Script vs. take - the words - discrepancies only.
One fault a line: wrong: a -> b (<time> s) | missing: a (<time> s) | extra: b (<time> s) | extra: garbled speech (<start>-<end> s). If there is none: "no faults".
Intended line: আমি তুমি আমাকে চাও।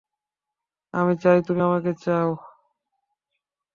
extra: চাই (1.2 s)